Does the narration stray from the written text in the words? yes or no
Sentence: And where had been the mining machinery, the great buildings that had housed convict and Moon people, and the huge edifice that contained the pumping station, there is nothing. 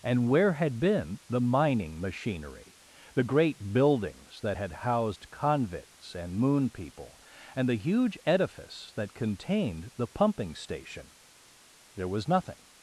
yes